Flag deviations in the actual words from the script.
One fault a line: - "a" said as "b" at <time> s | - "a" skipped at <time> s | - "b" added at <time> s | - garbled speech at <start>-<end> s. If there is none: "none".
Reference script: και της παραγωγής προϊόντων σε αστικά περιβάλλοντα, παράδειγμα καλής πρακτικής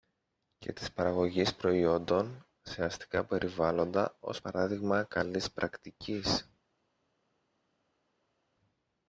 - "ως" added at 4.2 s